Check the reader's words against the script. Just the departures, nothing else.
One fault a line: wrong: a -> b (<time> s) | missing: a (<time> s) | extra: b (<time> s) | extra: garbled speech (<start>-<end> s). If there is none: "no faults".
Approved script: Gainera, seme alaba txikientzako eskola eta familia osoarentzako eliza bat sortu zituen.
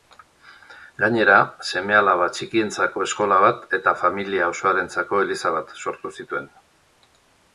extra: bat (3.5 s)